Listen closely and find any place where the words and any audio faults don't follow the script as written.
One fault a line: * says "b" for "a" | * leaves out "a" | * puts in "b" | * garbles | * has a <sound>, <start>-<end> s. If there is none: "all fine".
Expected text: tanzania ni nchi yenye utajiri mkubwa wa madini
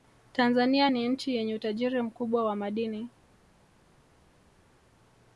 all fine